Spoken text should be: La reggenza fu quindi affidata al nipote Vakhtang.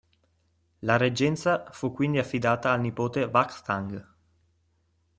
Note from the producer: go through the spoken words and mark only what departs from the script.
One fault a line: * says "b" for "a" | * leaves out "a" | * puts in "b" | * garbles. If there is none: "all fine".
all fine